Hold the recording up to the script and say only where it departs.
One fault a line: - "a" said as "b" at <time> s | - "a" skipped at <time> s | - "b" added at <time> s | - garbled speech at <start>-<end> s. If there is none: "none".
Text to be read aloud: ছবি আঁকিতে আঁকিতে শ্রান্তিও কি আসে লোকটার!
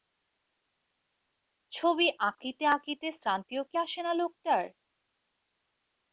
- "না" added at 4.0 s